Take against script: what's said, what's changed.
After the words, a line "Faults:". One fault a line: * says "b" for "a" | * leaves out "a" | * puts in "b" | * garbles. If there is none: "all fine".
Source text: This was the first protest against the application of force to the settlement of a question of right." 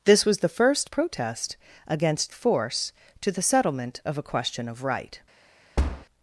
This was the first protest against force to the settlement of a question of right."
Faults:
* leaves out "the application of"